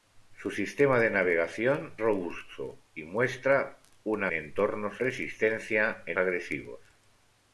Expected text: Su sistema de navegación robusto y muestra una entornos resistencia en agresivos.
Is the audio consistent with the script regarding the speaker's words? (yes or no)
yes